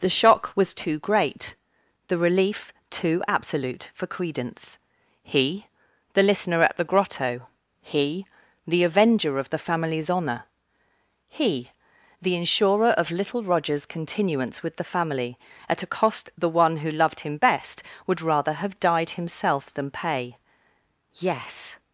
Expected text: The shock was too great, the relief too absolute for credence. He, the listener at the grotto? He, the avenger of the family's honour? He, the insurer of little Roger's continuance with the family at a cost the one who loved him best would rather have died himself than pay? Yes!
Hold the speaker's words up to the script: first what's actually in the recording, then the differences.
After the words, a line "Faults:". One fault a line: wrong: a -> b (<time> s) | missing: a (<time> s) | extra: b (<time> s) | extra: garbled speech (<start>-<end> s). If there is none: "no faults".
The shock was too great, the relief too absolute for credence. He, the listener at the grotto? He, the avenger of the family's honour? He, the insurer of little Roger's continuance with the family at a cost the one who loved him best would rather have died himself than pay? Yes!
Faults:
no faults